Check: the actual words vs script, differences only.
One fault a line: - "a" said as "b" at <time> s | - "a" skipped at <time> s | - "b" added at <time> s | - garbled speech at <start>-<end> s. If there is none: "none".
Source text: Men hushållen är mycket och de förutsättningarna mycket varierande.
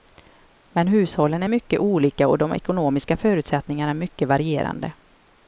- "olika" added at 1.8 s
- "ekonomiska" added at 2.5 s